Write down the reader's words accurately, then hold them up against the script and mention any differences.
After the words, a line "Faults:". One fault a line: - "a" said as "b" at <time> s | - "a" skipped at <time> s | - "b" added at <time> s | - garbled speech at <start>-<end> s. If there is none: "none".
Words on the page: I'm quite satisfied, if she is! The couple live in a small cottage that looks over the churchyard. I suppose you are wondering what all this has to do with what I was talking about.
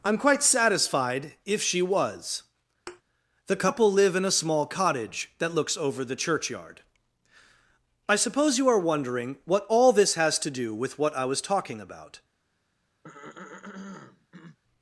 I'm quite satisfied, if she was! The couple live in a small cottage that looks over the churchyard. I suppose you are wondering what all this has to do with what I was talking about.
Faults:
- "is" said as "was" at 1.8 s